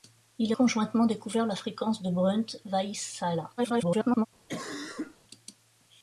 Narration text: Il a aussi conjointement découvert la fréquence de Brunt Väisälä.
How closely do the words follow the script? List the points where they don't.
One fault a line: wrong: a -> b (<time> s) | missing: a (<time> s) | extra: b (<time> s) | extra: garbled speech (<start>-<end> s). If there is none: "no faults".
missing: aussi (0.6 s)
extra: garbled speech (3.6-4.3 s)